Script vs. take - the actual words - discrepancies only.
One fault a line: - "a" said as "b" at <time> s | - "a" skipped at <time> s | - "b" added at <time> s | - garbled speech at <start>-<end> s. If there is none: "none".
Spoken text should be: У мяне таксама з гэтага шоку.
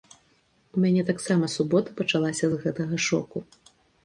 - "субота пачалася" added at 1.6 s